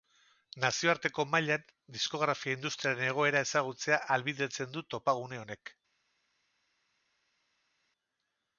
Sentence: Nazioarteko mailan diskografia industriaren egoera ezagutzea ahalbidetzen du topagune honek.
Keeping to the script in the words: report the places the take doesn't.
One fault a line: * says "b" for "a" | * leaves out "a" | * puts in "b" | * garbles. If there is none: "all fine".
all fine